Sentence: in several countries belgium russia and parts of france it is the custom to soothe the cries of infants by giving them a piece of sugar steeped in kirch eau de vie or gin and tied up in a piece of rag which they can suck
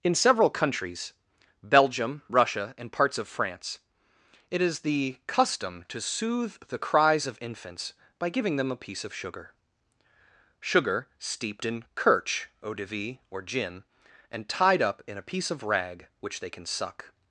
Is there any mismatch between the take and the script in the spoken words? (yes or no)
yes